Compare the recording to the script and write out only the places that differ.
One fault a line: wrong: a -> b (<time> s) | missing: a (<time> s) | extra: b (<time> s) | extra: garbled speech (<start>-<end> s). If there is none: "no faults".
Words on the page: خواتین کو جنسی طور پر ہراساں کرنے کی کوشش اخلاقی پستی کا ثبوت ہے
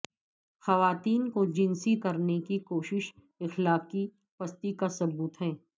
missing: طور پر ہراساں (1.9 s)